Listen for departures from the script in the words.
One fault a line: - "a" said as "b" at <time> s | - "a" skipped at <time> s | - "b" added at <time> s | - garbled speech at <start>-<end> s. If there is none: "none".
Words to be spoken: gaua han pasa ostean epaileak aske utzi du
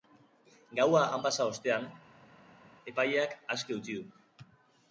none